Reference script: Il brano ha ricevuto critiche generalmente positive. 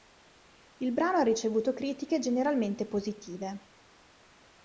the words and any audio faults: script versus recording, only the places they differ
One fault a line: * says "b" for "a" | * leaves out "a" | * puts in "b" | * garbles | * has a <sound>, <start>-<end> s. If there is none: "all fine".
all fine